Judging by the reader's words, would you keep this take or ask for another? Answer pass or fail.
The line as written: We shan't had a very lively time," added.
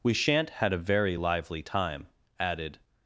pass